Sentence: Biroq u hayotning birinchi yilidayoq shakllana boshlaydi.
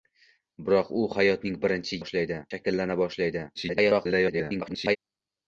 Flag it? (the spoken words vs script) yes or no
yes